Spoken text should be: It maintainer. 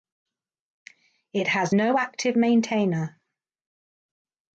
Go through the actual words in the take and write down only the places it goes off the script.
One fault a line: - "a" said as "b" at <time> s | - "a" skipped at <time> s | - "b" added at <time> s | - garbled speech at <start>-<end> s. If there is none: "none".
- "has no active" added at 1.5 s